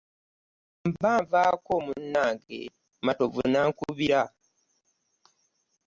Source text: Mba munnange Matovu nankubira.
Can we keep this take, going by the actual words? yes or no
no